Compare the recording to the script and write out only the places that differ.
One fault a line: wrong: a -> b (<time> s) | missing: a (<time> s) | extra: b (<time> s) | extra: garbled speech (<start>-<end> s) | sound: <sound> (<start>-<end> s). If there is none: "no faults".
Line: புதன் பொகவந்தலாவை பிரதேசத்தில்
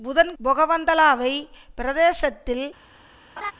sound: laugh (3.4-3.5 s)